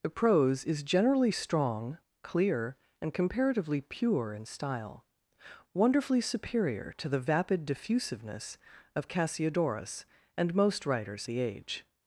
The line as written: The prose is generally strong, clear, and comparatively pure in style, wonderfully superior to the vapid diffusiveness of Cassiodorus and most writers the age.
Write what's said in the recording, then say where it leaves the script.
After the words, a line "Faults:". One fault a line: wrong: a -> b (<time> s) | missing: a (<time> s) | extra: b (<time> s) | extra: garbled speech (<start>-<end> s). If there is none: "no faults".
The prose is generally strong, clear, and comparatively pure in style, wonderfully superior to the vapid diffusiveness of Cassiodorus and most writers the age.
Faults:
no faults